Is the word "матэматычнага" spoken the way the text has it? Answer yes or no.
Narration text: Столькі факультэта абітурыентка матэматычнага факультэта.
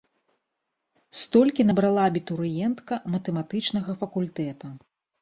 yes